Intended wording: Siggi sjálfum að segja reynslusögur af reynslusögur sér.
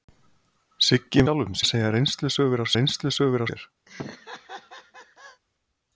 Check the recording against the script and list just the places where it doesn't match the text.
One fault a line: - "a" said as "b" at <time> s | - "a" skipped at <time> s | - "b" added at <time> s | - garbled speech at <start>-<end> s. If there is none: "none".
none